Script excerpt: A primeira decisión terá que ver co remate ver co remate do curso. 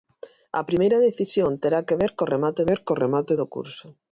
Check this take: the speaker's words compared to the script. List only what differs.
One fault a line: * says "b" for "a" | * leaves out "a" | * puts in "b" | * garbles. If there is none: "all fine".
all fine